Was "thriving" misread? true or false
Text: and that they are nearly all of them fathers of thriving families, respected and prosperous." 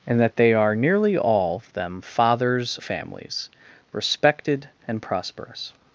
true